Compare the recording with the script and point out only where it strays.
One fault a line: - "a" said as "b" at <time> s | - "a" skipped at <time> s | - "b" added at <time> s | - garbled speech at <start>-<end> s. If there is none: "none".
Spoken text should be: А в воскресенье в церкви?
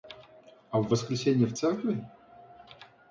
none